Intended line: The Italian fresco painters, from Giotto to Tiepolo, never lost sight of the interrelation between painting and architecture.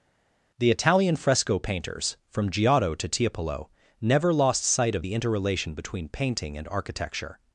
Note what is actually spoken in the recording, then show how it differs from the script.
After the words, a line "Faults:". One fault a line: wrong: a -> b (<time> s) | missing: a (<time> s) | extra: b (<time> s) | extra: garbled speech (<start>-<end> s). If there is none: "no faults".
The Italian fresco painters, from Giotto to Tiepolo, never lost sight of the interrelation between painting and architecture.
Faults:
no faults